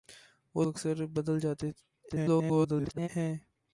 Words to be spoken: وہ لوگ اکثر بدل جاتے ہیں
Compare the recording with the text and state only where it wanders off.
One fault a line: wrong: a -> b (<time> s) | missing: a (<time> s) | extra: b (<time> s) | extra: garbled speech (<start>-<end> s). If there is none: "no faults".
missing: لوگ (0.7 s)
extra: garbled speech (2.1-3.1 s)